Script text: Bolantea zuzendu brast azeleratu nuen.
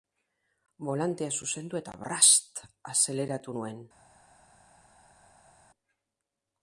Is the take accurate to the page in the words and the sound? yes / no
no